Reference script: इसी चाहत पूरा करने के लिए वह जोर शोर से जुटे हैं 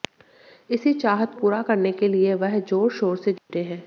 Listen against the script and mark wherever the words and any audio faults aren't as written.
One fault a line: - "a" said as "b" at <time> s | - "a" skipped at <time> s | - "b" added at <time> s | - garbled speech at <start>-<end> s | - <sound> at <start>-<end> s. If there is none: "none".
- dropout at 3.4-3.5 s